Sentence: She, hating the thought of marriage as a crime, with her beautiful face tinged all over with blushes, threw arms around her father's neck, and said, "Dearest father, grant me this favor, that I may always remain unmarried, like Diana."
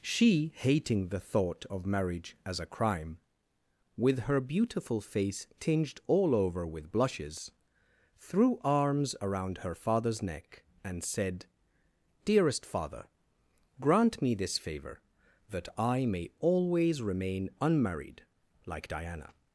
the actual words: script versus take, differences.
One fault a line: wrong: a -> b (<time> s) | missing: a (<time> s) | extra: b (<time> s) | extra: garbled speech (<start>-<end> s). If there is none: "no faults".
no faults